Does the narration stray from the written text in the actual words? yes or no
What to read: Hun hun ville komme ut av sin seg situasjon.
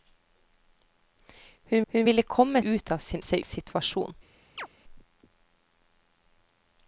no